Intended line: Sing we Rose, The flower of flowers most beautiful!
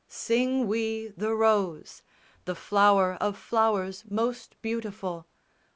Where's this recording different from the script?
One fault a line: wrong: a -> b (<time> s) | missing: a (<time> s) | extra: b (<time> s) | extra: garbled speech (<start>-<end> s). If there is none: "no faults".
extra: the (1.1 s)